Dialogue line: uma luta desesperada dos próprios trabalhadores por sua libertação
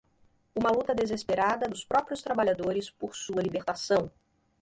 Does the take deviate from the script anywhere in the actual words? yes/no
no